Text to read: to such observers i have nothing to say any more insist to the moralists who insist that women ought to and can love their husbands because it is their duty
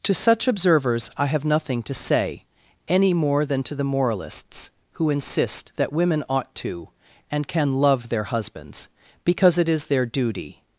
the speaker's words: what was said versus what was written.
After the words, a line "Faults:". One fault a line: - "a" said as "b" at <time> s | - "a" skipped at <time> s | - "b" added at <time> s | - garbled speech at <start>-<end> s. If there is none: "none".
to such observers i have nothing to say any more than to the moralists who insist that women ought to and can love their husbands because it is their duty
Faults:
- "insist" said as "than" at 3.5 s